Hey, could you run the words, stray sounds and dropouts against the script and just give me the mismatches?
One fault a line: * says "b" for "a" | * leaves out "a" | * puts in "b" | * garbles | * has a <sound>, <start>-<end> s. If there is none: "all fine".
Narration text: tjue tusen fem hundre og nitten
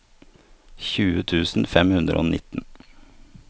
all fine